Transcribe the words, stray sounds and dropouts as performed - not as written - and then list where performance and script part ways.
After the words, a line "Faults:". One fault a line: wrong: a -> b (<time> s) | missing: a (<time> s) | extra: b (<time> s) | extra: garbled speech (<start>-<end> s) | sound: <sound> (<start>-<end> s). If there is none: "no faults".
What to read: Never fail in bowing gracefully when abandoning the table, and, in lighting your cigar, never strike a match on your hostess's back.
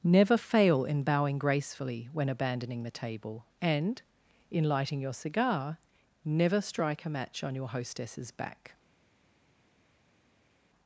Never fail in bowing gracefully when abandoning the table, and, in lighting your cigar, never strike a match on your hostess's back.
Faults:
no faults